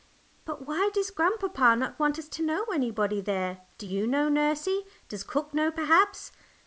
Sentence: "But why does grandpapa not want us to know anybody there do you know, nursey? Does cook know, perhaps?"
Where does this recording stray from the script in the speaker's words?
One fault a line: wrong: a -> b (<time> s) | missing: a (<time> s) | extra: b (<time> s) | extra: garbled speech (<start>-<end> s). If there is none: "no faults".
no faults